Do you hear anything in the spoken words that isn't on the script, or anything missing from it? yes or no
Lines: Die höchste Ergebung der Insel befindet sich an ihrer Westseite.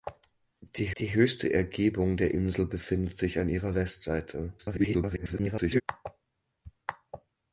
yes